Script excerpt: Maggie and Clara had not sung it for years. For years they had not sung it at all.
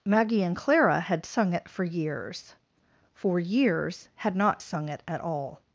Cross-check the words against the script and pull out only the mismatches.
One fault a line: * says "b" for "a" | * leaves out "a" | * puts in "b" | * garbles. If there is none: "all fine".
* leaves out "not"
* leaves out "they"